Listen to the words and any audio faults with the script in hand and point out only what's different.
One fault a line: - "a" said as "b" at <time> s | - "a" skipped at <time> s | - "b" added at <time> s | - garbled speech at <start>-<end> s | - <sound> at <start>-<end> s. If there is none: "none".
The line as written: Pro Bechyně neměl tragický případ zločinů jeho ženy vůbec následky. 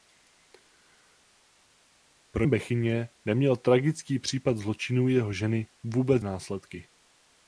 none